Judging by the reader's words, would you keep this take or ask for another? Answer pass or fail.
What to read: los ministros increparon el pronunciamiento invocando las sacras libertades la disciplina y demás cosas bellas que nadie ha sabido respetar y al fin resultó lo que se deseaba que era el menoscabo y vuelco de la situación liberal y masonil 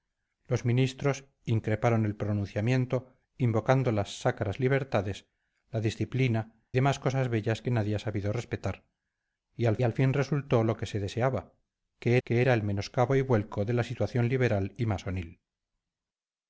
fail